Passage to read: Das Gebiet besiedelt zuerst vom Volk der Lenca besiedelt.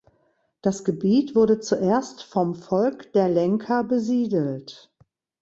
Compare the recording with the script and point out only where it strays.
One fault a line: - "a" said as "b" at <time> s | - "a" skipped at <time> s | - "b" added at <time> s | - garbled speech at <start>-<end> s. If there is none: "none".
- "besiedelt" said as "wurde" at 1.4 s